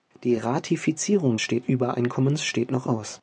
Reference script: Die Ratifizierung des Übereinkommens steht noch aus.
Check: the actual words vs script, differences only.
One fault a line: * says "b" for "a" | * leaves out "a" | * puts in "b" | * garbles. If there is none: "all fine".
* says "steht" for "des"